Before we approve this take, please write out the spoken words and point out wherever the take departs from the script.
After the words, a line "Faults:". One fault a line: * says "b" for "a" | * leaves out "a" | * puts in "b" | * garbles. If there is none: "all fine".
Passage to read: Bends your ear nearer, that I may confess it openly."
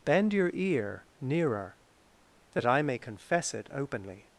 Bend your ear nearer, that I may confess it openly."
Faults:
* says "Bend" for "Bends"